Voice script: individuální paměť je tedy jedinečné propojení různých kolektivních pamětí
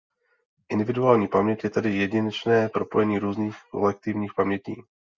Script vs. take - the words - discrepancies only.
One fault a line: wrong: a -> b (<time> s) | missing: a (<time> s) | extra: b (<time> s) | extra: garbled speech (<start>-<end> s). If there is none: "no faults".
no faults